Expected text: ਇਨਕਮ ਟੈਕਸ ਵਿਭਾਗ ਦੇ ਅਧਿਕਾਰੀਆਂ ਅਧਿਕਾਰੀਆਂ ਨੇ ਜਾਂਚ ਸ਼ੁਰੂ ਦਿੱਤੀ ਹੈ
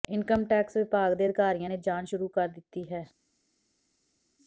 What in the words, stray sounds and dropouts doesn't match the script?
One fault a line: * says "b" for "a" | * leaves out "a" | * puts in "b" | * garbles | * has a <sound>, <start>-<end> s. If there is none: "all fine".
* leaves out "ਅਧਿਕਾਰੀਆਂ"
* puts in "ਕਰ"